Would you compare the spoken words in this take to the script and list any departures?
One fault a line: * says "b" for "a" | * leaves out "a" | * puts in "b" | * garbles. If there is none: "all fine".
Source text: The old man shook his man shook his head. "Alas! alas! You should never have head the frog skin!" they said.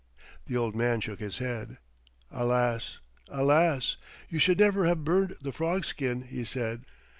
* leaves out "man shook his"
* says "burned" for "head"
* says "he" for "they"